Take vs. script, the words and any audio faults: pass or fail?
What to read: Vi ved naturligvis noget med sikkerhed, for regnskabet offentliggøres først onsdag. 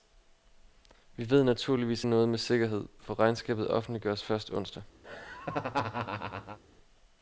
fail